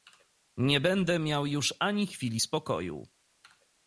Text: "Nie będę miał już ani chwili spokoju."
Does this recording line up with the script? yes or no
yes